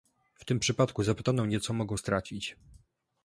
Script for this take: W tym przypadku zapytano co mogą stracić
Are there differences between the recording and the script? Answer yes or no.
yes